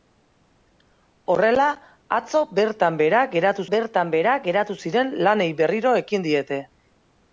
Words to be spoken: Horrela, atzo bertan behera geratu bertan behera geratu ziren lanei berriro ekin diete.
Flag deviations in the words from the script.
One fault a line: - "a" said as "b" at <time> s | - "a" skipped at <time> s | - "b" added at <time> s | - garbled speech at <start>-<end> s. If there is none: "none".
none